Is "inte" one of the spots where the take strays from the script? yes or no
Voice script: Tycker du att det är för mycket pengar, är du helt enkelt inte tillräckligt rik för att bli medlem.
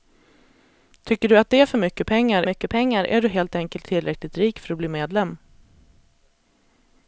yes